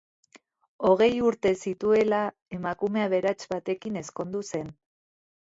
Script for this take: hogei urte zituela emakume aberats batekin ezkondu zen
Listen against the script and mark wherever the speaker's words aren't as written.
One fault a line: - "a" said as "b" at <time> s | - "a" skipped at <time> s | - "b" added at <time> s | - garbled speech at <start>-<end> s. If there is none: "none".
none